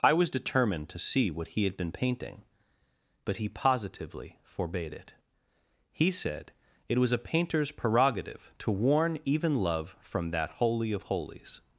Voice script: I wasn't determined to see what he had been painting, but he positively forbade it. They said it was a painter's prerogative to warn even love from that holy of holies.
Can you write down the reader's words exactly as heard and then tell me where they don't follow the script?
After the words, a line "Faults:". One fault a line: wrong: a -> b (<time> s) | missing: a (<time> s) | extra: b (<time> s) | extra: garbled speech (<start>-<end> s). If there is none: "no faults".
I was determined to see what he had been painting, but he positively forbade it. He said it was a painter's prerogative to warn even love from that holy of holies.
Faults:
wrong: wasn't -> was (0.1 s)
wrong: They -> He (5.9 s)